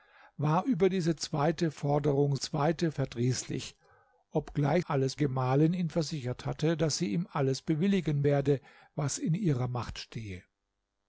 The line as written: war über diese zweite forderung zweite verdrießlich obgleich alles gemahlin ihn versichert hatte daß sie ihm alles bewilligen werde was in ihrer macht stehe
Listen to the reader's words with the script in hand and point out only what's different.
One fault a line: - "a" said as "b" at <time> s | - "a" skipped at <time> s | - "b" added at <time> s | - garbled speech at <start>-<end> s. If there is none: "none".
none